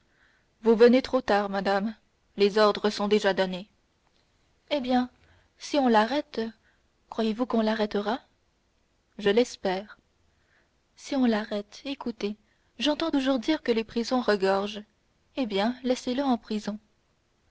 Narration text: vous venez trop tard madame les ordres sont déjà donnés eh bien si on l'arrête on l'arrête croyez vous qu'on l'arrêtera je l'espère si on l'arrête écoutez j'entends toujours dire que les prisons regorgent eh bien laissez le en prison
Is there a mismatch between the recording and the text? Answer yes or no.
yes